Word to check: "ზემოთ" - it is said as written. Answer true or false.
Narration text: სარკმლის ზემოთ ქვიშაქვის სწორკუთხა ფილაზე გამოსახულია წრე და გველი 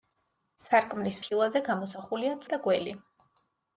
false